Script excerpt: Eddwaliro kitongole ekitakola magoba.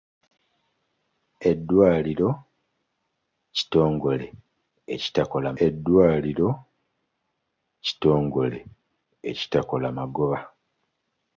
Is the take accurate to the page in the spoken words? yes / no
no